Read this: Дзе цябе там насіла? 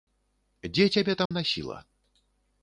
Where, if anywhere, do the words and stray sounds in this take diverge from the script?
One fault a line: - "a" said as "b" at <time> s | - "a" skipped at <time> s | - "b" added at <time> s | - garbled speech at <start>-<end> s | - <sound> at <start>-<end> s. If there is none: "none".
- dropout at 1.3-1.3 s